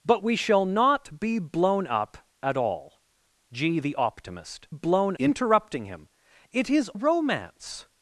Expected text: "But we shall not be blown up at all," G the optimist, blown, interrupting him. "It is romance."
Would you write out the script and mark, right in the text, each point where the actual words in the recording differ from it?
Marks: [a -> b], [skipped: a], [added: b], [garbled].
"But we shall not be blown up at all," G the optimist, blown, interrupting him. "It is romance."